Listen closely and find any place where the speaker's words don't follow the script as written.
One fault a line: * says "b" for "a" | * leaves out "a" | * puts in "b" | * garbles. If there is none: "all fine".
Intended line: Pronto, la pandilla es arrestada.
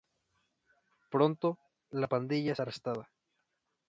all fine